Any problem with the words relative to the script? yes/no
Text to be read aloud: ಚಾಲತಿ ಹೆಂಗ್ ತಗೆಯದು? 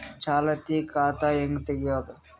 yes